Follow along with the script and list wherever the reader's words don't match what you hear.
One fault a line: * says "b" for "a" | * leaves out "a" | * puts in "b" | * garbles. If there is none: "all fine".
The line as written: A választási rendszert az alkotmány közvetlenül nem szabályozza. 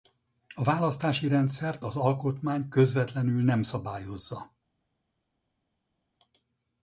all fine